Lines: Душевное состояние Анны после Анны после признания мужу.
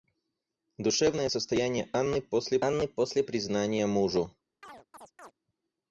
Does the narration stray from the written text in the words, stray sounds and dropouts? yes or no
yes